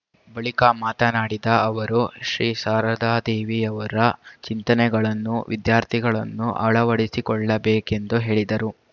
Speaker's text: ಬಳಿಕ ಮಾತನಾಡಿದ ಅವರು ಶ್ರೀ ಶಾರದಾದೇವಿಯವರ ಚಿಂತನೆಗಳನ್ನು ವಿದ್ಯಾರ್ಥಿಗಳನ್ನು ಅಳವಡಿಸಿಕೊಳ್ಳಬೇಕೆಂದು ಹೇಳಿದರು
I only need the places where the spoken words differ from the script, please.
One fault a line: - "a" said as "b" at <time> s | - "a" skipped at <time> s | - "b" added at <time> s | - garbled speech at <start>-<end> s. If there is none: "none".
none